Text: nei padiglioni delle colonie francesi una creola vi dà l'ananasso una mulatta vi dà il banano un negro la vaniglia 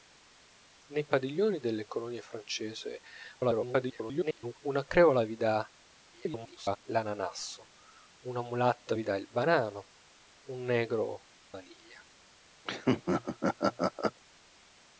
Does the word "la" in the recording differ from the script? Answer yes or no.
yes